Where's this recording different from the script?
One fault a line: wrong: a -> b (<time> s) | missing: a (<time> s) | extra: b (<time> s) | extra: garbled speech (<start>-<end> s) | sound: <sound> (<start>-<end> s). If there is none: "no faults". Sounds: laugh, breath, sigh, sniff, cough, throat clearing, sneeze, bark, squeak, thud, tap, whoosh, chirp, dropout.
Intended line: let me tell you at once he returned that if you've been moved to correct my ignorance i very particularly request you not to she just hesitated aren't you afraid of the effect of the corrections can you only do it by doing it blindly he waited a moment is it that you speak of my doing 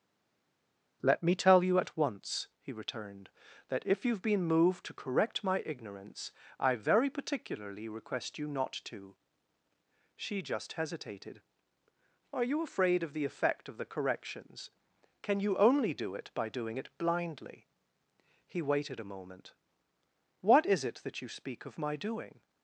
wrong: aren't -> are (12.3 s)
extra: what (20.4 s)